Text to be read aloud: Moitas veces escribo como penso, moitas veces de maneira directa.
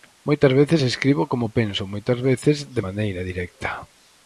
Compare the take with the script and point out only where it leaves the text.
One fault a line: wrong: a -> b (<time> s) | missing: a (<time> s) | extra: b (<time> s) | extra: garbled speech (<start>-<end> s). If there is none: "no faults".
no faults